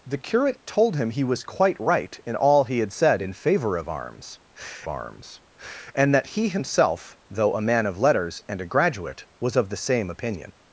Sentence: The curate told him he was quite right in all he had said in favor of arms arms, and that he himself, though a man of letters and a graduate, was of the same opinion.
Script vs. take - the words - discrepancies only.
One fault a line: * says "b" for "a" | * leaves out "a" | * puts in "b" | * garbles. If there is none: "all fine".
all fine